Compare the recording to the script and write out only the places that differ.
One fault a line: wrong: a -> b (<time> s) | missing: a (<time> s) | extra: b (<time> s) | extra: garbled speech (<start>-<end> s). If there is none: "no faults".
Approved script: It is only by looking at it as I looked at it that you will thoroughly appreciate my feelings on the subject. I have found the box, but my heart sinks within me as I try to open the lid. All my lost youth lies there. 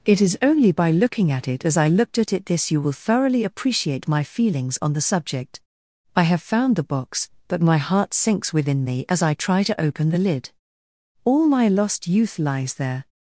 wrong: that -> this (2.5 s)